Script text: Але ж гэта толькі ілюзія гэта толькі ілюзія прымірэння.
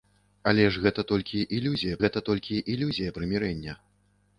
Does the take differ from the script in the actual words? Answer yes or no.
no